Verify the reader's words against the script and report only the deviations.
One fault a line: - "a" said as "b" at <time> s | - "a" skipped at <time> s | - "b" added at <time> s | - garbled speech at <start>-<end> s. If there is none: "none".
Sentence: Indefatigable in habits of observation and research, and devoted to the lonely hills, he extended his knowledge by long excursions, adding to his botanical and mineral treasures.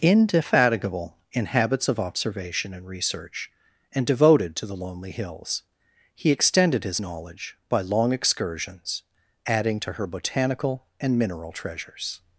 - "his" said as "her" at 9.9 s